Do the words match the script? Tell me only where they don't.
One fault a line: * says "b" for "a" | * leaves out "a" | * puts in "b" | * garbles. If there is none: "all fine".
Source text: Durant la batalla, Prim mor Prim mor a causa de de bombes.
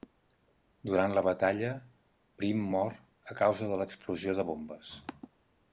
* leaves out "Prim mor"
* puts in "l'explosió"